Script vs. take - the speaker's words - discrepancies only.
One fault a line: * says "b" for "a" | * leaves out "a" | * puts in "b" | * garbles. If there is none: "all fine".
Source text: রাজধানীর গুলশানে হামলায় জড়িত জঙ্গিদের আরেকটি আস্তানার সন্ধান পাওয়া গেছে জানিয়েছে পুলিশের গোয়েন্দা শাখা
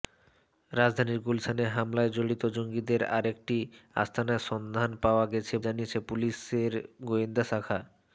all fine